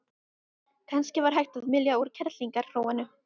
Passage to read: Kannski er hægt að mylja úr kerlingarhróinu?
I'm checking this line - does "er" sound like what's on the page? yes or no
no